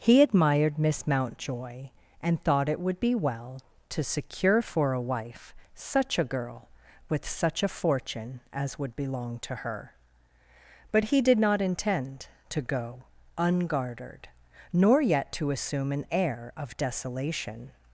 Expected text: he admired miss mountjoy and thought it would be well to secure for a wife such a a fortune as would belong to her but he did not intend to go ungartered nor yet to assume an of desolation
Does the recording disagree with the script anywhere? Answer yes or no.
yes